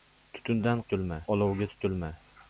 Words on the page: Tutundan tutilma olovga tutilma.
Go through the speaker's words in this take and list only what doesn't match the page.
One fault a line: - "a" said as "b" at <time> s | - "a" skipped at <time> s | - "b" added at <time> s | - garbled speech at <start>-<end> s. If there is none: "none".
none